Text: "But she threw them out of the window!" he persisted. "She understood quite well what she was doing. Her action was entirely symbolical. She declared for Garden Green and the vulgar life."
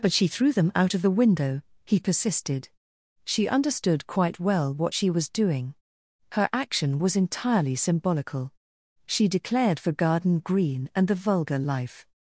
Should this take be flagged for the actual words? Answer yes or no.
no